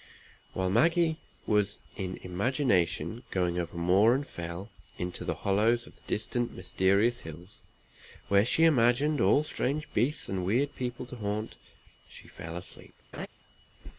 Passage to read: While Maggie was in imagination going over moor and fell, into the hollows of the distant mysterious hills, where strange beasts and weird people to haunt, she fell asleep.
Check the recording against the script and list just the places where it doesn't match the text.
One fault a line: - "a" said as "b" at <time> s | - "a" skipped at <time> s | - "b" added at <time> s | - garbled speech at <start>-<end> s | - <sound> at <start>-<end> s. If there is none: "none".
- "she imagined all" added at 8.5 s
- laugh at 13.1-13.3 s